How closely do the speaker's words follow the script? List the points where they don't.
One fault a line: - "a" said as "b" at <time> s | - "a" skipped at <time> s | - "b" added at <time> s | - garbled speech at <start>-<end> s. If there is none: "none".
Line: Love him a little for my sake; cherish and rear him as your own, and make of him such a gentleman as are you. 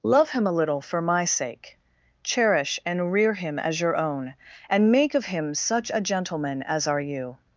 none